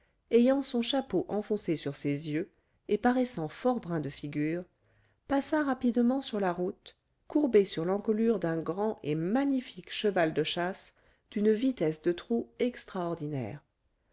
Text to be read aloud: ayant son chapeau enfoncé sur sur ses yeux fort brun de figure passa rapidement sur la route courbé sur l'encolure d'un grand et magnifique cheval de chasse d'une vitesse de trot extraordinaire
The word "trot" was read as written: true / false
true